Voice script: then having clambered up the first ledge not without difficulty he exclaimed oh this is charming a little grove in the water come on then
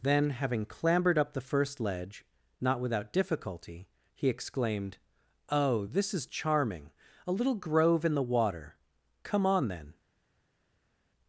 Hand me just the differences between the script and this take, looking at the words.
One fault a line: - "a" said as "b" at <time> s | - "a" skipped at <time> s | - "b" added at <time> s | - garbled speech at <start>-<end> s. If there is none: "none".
none